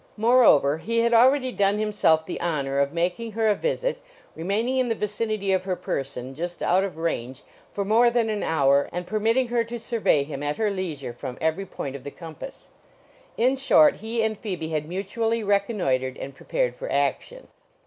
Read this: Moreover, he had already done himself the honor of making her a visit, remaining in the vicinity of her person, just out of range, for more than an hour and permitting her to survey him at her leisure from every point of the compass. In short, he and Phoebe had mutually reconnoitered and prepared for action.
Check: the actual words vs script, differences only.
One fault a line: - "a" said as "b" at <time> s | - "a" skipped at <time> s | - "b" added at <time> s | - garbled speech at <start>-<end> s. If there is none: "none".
none